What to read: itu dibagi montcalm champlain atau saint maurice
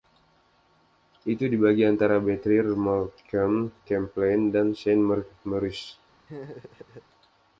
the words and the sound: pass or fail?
fail